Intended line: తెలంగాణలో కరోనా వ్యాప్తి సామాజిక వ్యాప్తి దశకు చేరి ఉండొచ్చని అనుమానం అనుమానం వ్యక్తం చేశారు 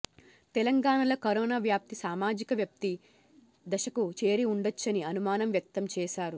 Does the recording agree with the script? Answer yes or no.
no